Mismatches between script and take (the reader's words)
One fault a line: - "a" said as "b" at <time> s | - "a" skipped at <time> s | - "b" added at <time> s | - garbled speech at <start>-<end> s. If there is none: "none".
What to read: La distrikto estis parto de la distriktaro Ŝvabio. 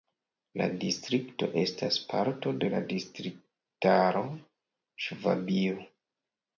- "estis" said as "estas" at 1.6 s